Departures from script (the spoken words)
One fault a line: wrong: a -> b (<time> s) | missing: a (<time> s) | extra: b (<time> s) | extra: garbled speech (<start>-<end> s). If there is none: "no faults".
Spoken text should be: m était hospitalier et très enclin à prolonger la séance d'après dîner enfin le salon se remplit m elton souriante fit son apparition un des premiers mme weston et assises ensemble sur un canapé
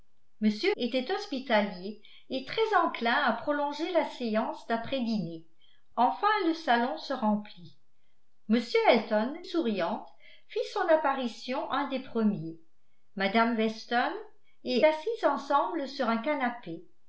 no faults